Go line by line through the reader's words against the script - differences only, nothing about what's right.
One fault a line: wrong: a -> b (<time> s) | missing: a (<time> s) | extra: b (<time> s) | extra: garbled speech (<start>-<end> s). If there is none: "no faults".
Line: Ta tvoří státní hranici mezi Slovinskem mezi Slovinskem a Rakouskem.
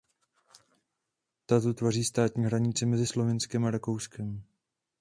extra: tu (1.6 s)
missing: mezi Slovinskem (3.6 s)